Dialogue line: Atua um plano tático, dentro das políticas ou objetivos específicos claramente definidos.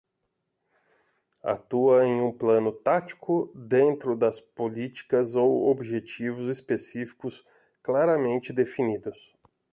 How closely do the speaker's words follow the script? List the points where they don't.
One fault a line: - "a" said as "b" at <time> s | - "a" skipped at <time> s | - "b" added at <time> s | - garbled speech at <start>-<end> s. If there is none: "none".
- "em" added at 2.1 s